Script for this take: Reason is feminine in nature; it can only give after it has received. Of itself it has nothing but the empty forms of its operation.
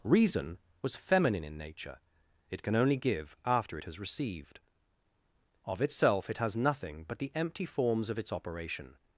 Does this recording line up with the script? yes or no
no